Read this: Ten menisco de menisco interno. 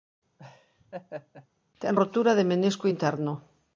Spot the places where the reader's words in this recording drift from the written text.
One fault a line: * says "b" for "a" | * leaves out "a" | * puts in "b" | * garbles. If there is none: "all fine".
* says "rotura" for "menisco"